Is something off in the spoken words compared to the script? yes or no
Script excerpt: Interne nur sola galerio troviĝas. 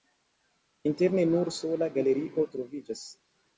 no